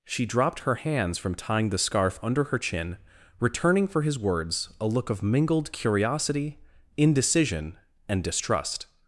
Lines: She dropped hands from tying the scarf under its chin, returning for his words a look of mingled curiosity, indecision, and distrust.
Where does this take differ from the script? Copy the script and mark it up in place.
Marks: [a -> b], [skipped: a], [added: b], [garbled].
She dropped [added: her] hands from tying the scarf under [its -> her] chin, returning for his words a look of mingled curiosity, indecision, and distrust.